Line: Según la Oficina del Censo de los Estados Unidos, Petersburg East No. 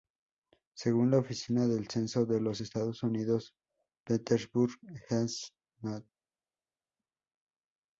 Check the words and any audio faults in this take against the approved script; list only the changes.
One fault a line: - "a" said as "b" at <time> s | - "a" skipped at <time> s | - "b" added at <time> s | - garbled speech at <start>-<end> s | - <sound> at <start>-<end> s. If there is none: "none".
none